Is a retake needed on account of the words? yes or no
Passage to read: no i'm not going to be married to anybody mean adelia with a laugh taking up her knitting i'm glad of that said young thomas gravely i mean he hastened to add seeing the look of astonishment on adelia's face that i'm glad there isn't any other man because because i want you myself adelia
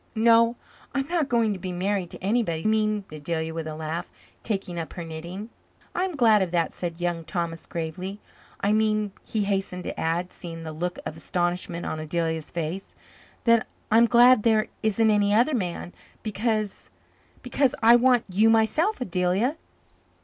no